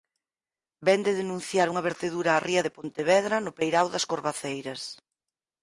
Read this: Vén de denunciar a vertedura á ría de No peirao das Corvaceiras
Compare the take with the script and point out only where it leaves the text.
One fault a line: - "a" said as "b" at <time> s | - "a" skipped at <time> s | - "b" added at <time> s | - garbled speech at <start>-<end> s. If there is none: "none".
- "a" said as "unha" at 1.7 s
- "Pontevedra" added at 2.8 s